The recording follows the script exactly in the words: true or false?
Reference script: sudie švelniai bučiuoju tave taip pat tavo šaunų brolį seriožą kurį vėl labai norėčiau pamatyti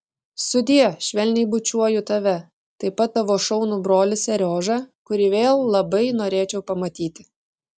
true